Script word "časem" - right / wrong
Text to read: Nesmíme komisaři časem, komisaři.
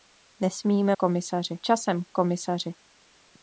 right